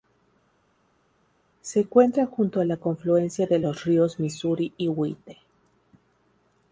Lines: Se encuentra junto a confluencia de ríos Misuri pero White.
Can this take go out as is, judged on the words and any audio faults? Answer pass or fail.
fail